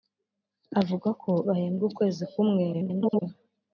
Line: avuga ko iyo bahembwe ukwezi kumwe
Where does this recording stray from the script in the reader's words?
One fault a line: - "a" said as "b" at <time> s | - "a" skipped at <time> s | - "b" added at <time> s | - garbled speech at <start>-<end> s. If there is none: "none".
- "iyo" skipped at 1.3 s
- garbled speech at 2.7-3.2 s